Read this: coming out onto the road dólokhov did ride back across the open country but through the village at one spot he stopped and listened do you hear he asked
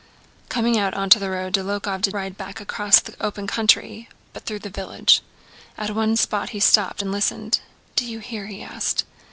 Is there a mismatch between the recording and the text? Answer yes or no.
no